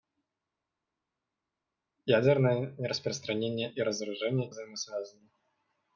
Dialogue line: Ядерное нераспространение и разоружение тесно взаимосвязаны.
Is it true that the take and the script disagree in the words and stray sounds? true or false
true